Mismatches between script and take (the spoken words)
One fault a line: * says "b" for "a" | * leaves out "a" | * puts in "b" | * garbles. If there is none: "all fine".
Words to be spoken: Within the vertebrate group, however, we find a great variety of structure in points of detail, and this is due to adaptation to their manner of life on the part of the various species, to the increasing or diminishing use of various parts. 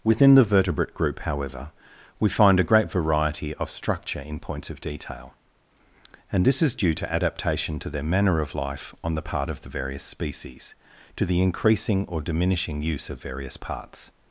all fine